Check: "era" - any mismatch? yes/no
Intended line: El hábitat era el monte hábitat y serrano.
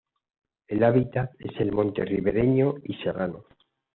yes